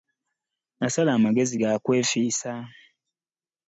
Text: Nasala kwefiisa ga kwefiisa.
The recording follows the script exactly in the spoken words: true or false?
false